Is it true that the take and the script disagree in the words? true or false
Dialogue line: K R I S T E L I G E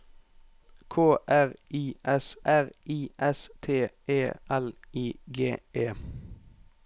true